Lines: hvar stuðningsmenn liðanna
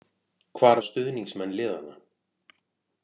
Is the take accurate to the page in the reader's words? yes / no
yes